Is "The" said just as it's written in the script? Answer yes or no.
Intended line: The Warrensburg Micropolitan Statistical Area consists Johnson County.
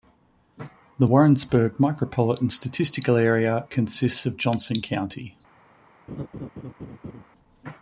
yes